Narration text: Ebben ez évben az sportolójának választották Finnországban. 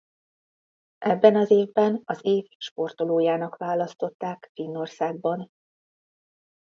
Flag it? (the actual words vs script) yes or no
yes